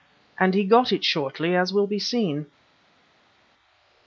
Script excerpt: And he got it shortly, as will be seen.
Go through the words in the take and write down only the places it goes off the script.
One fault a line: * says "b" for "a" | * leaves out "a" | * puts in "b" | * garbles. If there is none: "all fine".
all fine